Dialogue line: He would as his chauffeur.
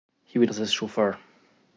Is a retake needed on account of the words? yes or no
no